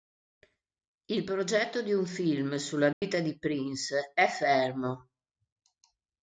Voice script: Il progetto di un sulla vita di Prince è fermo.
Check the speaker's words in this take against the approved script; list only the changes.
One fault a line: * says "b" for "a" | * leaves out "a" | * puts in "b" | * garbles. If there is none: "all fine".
* puts in "film"